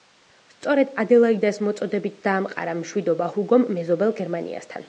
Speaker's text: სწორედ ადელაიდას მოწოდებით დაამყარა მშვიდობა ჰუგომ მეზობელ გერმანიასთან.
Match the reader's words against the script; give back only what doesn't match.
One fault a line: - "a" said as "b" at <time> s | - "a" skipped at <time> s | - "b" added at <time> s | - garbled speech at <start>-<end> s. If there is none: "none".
none